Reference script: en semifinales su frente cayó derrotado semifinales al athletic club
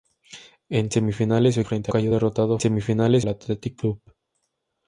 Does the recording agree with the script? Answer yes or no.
yes